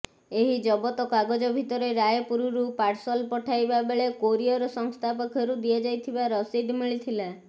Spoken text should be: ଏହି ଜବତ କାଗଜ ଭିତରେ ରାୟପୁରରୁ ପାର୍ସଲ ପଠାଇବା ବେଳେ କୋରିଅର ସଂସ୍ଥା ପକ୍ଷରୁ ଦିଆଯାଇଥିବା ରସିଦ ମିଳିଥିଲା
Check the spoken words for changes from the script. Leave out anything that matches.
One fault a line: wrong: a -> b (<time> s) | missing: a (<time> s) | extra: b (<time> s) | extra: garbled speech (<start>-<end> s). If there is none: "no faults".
no faults